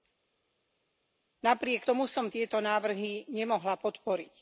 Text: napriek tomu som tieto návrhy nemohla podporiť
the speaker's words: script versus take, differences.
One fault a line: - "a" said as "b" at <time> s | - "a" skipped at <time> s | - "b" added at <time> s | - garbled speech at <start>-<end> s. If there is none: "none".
none